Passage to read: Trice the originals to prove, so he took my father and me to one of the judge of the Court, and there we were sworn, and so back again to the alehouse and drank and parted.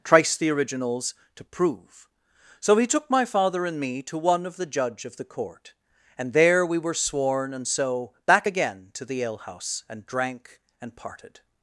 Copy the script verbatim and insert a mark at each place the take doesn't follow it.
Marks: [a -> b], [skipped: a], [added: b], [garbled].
Trice the originals to prove, so he took my father and me to one of the judge of the Court, and there we were sworn, and so back again to the alehouse and drank and parted.